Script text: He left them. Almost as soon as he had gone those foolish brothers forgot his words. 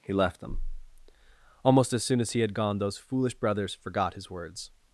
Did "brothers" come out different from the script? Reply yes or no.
no